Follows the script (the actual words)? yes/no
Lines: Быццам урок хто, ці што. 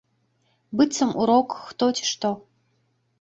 yes